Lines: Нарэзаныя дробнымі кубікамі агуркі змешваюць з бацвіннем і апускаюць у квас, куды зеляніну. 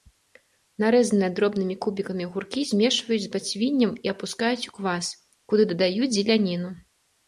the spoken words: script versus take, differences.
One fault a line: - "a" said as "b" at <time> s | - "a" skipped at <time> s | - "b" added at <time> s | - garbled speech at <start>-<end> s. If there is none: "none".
- "дадаюць" added at 5.7 s